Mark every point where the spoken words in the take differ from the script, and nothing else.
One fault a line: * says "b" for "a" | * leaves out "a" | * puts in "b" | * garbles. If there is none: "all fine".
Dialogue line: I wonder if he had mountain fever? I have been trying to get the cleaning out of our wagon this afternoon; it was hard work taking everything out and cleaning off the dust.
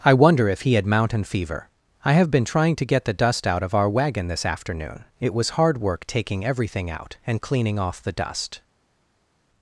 * says "dust" for "cleaning"